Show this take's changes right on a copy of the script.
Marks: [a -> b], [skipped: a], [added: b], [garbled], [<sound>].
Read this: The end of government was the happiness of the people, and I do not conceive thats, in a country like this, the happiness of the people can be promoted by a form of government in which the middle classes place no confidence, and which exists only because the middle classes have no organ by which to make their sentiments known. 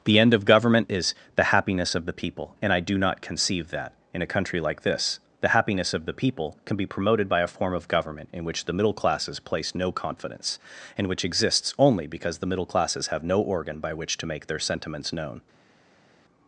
The end of government [was -> is] the happiness of the people, and I do not conceive [thats, -> that] in a country like this, the happiness of the people can be promoted by a form of government in which the middle classes place no confidence, and which exists only because the middle classes have no organ by which to make their sentiments known.